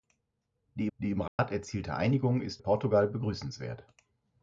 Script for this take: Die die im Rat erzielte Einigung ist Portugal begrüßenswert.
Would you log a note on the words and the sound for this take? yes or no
yes